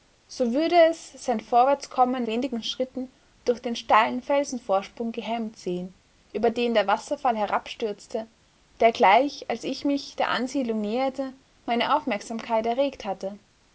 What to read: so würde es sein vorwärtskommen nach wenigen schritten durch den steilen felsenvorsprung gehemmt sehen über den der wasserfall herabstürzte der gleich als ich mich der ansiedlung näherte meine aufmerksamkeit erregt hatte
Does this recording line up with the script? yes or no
no